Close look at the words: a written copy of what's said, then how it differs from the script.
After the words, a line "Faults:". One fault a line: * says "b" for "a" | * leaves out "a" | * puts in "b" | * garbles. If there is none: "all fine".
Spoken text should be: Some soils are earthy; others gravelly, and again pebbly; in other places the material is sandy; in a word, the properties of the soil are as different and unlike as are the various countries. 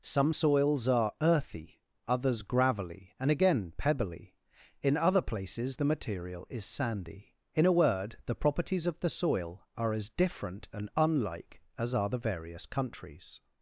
Some soils are earthy; others gravelly, and again pebbly; in other places the material is sandy; in a word, the properties of the soil are as different and unlike as are the various countries.
Faults:
all fine